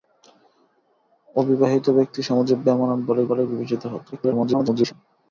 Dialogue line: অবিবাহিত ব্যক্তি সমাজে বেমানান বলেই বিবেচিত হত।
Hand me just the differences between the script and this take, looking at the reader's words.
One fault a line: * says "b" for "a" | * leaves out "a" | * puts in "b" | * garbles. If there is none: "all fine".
* puts in "বলেই"
* garbles